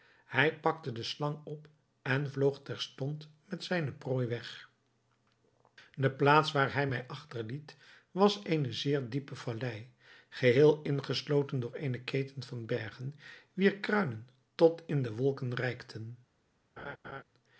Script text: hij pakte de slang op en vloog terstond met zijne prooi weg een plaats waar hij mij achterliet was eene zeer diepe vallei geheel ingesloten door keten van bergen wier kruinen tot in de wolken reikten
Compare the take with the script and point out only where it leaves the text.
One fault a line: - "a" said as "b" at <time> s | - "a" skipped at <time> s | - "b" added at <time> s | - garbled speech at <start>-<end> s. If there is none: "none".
- "een" said as "de" at 5.9 s
- "eene" added at 11.7 s